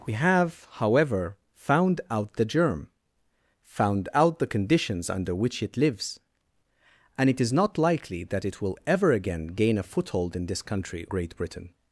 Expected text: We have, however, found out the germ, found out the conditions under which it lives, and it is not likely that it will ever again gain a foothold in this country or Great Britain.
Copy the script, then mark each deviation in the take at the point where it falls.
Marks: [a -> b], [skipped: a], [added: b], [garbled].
We have, however, found out the germ, found out the conditions under which it lives, and it is not likely that it will ever again gain a foothold in this country [skipped: or] Great Britain.